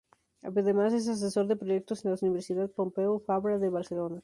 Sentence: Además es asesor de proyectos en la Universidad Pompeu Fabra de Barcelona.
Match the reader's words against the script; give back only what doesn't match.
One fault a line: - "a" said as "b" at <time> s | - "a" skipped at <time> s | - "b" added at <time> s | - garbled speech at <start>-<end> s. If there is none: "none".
none